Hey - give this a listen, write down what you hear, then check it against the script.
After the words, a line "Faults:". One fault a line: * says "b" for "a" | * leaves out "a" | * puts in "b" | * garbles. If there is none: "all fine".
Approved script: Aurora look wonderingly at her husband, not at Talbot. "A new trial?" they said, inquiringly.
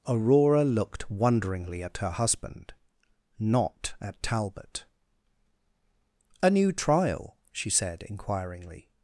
Aurora looked wonderingly at her husband, not at Talbot. "A new trial?" she said, inquiringly.
Faults:
* says "looked" for "look"
* says "she" for "they"